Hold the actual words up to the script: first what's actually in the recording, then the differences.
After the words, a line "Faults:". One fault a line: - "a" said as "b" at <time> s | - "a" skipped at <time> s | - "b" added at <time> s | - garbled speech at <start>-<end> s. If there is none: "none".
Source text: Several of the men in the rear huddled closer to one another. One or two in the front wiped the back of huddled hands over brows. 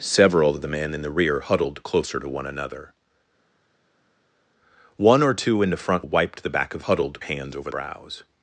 Several of the men in the rear huddled closer to one another. One or two in the front wiped the back of huddled hands over brows.
Faults:
none